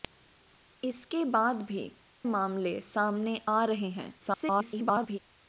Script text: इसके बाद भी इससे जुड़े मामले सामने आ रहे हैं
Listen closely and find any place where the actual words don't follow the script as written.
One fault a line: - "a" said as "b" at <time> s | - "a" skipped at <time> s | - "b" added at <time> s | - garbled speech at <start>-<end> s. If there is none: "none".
- "इससे जुड़े" skipped at 1.8 s
- garbled speech at 4.2-5.2 s